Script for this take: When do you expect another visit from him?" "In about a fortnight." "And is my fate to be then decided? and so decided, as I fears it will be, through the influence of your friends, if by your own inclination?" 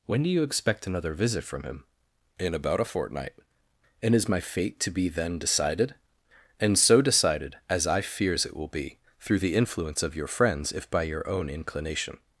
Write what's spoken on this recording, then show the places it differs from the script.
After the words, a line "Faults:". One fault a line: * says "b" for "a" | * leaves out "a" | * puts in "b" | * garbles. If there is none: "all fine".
When do you expect another visit from him?" "In about a fortnight." "And is my fate to be then decided? and so decided, as I fears it will be, through the influence of your friends, if by your own inclination?"
Faults:
all fine